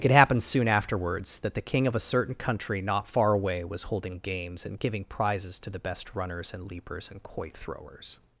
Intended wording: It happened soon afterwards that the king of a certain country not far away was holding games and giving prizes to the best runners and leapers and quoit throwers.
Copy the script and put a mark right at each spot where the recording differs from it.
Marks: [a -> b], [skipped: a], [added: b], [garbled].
It happened soon afterwards that the king of a certain country not far away was holding games and giving prizes to the best runners and leapers and quoit throwers.